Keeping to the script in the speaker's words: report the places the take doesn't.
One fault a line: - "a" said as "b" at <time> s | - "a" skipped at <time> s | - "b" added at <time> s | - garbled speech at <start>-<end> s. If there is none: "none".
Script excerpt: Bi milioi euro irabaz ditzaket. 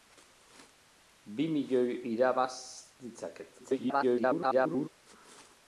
- "euro" skipped at 2.0 s
- garbled speech at 3.6-4.9 s